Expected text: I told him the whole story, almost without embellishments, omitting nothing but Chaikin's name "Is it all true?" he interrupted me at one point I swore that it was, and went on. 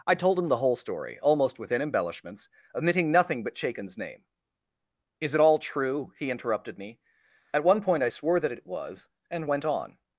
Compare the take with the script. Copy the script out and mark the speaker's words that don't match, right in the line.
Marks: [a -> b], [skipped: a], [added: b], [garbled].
I told him the whole story, almost [without -> within] embellishments, omitting nothing but Chaikin's name "Is it all true?" he interrupted me at one point I swore that it was, and went on.